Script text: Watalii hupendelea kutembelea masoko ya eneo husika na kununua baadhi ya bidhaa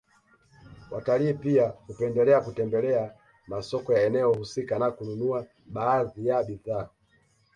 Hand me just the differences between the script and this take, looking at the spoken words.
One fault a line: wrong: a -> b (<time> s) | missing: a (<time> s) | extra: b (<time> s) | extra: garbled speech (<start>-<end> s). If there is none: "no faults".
extra: pia (1.3 s)